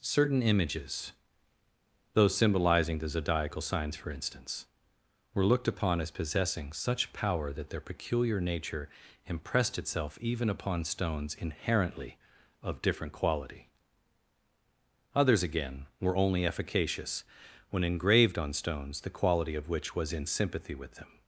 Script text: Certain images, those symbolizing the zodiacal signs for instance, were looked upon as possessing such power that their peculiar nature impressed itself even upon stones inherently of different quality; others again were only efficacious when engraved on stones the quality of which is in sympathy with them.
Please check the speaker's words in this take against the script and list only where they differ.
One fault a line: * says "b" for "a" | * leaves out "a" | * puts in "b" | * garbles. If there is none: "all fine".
* says "was" for "is"